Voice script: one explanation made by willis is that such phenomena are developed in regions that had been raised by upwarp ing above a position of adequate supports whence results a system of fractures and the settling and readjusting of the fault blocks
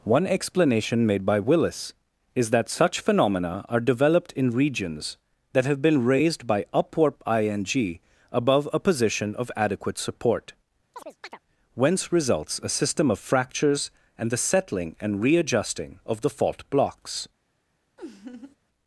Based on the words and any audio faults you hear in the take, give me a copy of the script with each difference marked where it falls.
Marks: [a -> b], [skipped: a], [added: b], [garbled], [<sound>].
one explanation made by willis is that such phenomena are developed in regions that [had -> have] been raised by upwarp ing above a position of adequate [supports -> support] [chirp] whence results a system of fractures and the settling and readjusting of the fault blocks [laugh]